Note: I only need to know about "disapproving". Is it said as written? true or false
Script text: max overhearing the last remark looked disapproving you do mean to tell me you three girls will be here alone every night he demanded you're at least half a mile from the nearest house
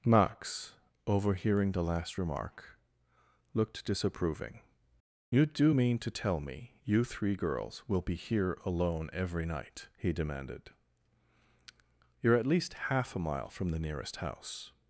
true